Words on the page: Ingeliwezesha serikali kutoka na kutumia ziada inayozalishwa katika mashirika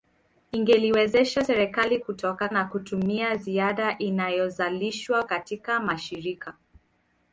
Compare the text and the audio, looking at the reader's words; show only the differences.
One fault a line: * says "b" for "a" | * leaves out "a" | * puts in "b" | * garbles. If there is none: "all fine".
all fine